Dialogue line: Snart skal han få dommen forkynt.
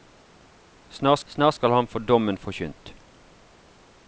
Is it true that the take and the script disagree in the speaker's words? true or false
true